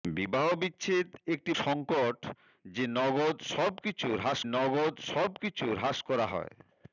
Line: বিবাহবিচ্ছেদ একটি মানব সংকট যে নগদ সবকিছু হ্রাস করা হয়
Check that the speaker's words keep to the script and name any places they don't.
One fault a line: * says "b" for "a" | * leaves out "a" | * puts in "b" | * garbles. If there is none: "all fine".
* leaves out "মানব"
* puts in "নগদ সবকিছু হ্রাস"